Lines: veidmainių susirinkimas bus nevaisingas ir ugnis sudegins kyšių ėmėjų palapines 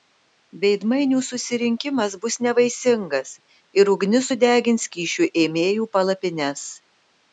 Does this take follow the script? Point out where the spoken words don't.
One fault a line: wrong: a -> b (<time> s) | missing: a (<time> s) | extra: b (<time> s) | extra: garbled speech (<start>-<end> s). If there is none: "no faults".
no faults